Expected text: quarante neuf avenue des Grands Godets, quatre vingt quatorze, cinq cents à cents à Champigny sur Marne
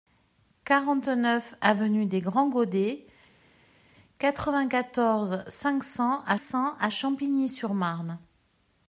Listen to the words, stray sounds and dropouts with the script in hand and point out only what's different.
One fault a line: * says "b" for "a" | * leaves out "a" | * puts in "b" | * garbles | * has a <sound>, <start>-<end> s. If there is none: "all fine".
all fine